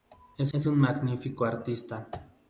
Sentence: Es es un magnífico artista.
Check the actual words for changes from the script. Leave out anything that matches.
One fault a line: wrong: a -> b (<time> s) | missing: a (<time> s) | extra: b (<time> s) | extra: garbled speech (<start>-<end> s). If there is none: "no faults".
no faults